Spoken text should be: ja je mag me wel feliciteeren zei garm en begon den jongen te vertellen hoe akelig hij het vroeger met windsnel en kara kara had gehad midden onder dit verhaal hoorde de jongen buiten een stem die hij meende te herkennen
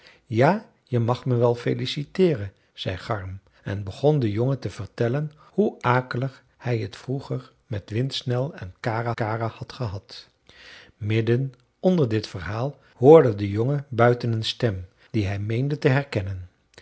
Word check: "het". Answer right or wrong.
right